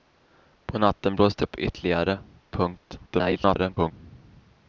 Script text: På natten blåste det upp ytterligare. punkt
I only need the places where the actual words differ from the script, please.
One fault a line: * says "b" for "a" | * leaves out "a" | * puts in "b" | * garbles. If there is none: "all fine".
* leaves out "det"
* garbles